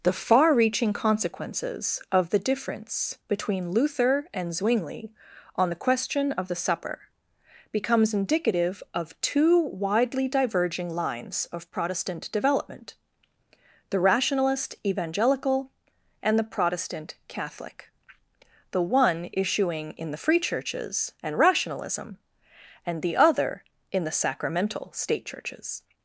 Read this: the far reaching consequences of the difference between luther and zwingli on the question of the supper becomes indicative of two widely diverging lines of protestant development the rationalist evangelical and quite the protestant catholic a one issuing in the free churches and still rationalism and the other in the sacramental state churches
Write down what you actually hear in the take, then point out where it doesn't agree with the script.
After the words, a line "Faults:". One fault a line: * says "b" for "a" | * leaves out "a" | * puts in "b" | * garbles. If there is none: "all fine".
the far reaching consequences of the difference between luther and zwingli on the question of the supper becomes indicative of two widely diverging lines of protestant development the rationalist evangelical and the protestant catholic the one issuing in the free churches and rationalism and the other in the sacramental state churches
Faults:
* leaves out "quite"
* says "the" for "a"
* leaves out "still"